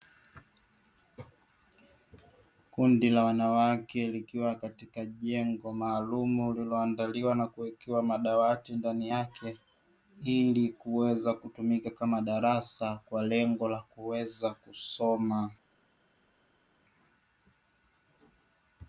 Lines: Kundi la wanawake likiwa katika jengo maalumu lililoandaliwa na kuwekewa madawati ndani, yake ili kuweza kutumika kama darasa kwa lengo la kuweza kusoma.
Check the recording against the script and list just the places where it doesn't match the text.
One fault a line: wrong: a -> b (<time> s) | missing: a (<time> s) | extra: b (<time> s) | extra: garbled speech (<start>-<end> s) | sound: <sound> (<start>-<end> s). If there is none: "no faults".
no faults